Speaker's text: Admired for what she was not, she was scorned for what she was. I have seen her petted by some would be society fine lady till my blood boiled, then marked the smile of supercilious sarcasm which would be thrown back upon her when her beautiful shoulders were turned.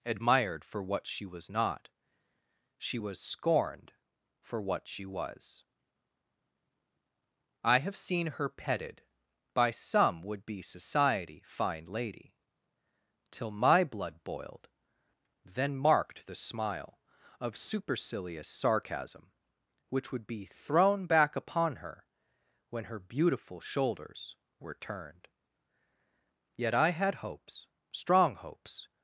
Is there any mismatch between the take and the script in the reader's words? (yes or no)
yes